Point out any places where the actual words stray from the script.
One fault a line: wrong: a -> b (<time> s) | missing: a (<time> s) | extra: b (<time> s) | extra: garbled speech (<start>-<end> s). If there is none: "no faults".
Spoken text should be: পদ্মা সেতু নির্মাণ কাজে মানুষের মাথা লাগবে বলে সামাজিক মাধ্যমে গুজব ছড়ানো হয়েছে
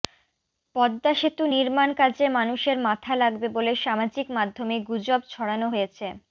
no faults